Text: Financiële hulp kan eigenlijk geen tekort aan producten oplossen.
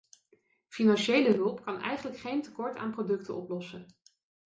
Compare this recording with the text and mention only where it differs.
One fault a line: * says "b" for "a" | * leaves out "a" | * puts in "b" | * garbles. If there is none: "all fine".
all fine